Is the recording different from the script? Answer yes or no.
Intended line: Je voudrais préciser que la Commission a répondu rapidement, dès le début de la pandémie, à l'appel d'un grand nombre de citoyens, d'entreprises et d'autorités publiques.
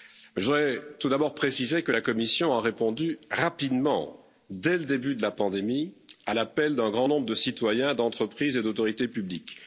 yes